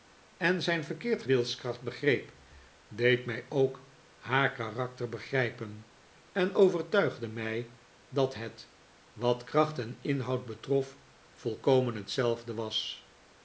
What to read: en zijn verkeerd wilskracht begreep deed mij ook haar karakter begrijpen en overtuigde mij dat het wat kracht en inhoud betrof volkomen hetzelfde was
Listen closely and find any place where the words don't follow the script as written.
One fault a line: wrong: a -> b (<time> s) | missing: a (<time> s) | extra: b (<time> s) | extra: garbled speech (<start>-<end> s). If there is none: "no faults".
no faults